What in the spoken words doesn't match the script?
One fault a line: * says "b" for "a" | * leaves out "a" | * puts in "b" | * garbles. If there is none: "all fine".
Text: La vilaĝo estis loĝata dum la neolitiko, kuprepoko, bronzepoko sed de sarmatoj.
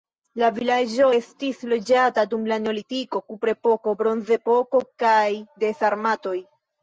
* says "kaj" for "sed"